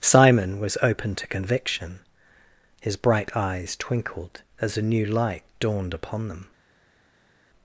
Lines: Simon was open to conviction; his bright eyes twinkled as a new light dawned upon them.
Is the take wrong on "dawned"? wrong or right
right